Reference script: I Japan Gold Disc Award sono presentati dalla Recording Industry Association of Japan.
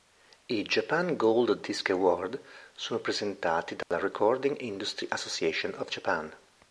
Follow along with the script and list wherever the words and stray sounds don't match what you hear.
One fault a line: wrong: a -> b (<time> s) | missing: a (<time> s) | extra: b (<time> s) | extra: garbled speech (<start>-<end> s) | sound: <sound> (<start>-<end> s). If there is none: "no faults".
sound: dropout (3.8-3.9 s)